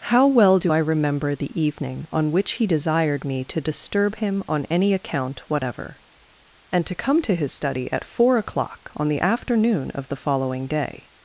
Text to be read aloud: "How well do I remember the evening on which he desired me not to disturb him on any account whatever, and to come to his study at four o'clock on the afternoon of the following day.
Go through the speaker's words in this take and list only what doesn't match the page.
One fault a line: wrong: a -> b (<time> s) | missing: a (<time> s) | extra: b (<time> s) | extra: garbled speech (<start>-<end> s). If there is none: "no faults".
missing: not (3.4 s)